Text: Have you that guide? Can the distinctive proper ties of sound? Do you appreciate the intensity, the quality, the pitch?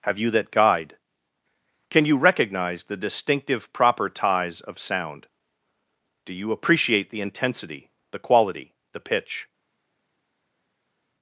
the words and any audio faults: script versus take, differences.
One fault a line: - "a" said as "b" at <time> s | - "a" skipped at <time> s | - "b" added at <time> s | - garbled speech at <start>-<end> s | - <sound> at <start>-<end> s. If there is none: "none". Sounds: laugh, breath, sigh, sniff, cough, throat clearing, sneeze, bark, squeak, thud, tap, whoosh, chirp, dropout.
- "you recognize" added at 2.0 s